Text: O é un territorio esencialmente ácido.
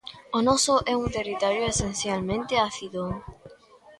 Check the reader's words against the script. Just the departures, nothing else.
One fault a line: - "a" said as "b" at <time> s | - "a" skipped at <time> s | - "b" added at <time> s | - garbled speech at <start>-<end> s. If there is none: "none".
- "noso" added at 0.5 s